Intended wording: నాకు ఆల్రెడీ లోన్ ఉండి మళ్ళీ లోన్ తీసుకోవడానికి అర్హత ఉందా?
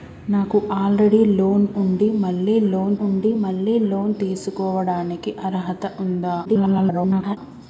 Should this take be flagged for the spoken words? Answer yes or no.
yes